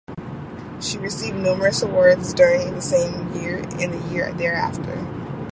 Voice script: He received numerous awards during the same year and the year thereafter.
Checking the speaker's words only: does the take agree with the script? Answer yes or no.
no